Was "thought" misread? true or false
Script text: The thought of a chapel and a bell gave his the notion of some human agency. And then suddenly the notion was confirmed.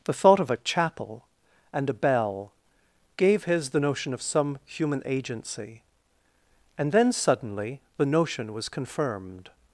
false